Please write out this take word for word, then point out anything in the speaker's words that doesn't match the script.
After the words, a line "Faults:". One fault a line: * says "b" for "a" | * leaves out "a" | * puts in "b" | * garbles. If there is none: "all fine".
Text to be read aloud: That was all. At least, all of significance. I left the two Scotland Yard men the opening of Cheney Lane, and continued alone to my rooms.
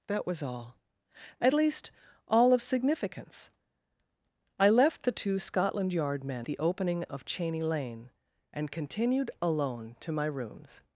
That was all. At least, all of significance. I left the two Scotland Yard men the opening of Cheney Lane, and continued alone to my rooms.
Faults:
all fine